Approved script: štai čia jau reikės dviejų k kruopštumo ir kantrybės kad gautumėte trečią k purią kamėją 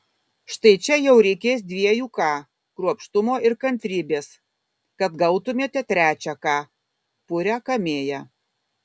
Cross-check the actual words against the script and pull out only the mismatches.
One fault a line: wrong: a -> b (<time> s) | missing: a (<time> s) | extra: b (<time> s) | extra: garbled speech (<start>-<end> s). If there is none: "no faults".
no faults